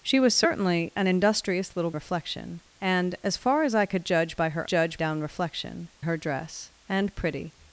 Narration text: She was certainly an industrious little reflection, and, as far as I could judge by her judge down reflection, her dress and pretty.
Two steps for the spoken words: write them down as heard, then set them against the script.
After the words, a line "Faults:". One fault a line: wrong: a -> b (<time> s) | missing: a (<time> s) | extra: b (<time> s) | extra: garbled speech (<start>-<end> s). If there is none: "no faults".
She was certainly an industrious little reflection, and, as far as I could judge by her judge down reflection, her dress and pretty.
Faults:
no faults